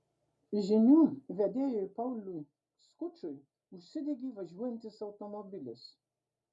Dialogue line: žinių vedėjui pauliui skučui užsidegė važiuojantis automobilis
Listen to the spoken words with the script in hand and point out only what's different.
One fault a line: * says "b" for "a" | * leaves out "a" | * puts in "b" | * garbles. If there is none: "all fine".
all fine